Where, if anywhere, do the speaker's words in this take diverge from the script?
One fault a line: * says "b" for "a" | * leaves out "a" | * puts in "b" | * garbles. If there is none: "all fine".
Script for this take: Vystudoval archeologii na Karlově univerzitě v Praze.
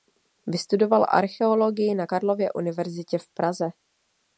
all fine